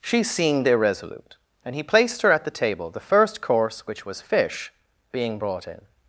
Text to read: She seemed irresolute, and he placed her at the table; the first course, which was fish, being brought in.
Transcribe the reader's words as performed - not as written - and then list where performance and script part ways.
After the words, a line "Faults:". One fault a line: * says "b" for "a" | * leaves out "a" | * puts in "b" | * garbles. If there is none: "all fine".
She seemed irresolute, and he placed her at the table; the first course, which was fish, being brought in.
Faults:
all fine